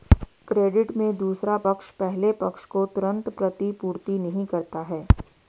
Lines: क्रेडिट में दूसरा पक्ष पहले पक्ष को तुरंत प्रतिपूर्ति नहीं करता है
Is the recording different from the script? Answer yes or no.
no